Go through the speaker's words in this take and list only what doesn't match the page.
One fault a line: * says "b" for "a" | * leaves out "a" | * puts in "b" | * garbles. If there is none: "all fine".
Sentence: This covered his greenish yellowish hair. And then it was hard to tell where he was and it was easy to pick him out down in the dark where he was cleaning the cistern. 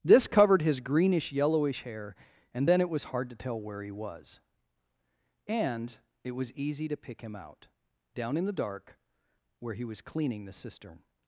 all fine